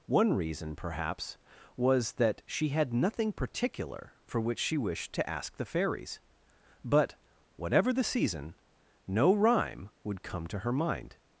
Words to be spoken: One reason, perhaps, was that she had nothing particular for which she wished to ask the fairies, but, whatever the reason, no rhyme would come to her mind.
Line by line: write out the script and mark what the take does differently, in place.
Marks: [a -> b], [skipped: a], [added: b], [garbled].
One reason, perhaps, was that she had nothing particular for which she wished to ask the fairies, but, whatever the [reason, -> season] no rhyme would come to her mind.